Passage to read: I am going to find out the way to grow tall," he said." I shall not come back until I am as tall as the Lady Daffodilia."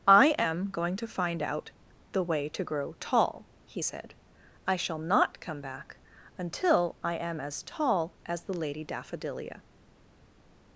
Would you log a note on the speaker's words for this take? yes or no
no